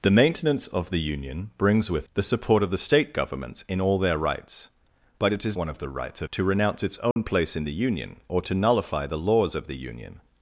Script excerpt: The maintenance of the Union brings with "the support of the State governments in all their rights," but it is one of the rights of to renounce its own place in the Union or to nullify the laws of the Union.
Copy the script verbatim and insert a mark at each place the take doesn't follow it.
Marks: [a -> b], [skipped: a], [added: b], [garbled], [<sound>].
The maintenance of the Union brings with "the support of the State governments in all their rights," but it is one of the rights of to renounce its own [dropout] place in the Union or to nullify the laws of the Union.